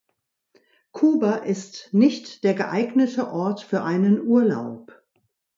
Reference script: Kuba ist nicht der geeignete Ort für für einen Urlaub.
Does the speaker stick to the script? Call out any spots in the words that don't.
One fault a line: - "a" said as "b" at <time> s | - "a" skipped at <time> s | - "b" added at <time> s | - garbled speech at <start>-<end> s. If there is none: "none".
- "für" skipped at 3.8 s